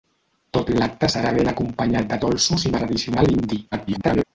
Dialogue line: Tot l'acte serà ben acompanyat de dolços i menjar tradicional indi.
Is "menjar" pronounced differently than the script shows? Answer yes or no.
yes